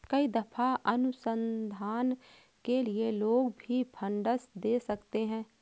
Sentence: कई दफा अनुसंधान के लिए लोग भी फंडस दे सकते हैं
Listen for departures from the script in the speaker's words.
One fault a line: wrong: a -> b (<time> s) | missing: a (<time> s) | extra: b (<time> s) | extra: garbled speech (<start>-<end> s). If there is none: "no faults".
no faults